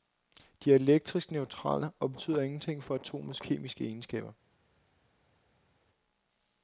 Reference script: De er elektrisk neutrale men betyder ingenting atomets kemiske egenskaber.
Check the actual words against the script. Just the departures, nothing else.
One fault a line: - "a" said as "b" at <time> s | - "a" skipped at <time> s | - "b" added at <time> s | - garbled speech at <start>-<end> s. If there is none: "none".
- "men" said as "og" at 2.0 s
- "for" added at 2.8 s